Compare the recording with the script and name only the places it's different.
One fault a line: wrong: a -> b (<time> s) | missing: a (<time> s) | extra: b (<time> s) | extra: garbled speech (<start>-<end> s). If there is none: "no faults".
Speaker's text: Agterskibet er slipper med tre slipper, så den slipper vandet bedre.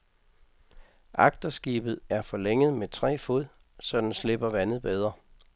wrong: slipper -> forlænget (2.2 s)
wrong: slipper -> fod (3.2 s)